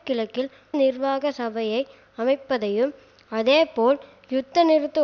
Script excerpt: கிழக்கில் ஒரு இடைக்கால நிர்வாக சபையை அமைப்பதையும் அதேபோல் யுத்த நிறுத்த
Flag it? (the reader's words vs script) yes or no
yes